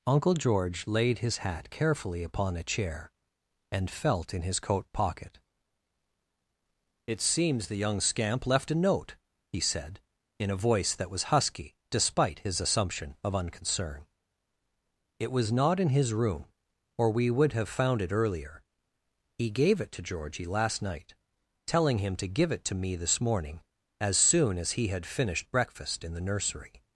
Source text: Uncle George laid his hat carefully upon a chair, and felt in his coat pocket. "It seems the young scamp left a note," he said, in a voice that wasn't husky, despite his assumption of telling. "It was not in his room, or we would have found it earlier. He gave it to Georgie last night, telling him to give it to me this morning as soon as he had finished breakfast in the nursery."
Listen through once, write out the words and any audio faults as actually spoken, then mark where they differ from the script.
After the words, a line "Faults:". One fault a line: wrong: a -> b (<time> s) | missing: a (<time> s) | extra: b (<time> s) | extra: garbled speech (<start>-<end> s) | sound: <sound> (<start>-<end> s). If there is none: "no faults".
Uncle George laid his hat carefully upon a chair, and felt in his coat pocket. "It seems the young scamp left a note," he said, in a voice that was husky, despite his assumption of unconcern. "It was not in his room, or we would have found it earlier. He gave it to Georgie last night, telling him to give it to me this morning as soon as he had finished breakfast in the nursery."
Faults:
wrong: wasn't -> was (11.1 s)
wrong: telling -> unconcern (13.3 s)